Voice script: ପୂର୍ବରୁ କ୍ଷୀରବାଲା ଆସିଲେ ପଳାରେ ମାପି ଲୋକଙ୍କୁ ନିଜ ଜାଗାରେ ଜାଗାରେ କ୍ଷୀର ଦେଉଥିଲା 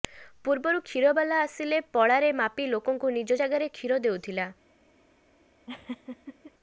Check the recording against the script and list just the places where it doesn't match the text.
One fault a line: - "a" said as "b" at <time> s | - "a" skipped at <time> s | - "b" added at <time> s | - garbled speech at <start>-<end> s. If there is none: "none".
- "ଜାଗାରେ" skipped at 3.7 s